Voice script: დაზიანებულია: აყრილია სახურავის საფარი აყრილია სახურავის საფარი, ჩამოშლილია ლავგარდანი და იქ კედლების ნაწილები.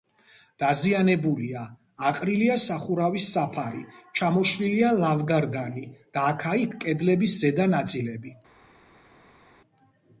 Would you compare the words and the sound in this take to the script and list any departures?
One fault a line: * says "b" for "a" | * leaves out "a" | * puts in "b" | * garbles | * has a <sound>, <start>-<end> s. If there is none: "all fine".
* leaves out "აყრილია სახურავის საფარი"
* puts in "აქა"
* puts in "ზედა"